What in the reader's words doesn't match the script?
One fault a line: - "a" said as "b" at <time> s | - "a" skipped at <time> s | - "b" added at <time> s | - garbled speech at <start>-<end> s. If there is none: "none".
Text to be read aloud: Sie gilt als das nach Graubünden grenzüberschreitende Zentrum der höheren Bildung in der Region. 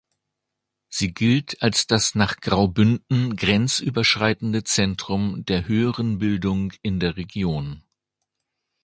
none